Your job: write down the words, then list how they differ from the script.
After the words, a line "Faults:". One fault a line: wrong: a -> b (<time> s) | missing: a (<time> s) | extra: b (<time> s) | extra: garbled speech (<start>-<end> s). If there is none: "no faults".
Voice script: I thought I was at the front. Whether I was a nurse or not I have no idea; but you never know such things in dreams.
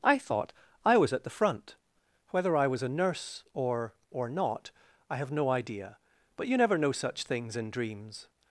I thought I was at the front. Whether I was a nurse or or not I have no idea; but you never know such things in dreams.
Faults:
extra: or (4.1 s)